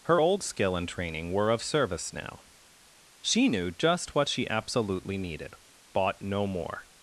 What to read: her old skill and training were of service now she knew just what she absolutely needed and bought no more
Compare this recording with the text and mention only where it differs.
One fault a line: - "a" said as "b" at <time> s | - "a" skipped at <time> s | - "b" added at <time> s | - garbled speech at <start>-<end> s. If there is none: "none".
- "and" skipped at 5.5 s